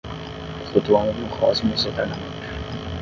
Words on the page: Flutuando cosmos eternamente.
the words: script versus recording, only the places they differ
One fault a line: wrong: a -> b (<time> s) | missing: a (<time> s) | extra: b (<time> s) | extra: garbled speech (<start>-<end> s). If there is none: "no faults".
extra: no (1.1 s)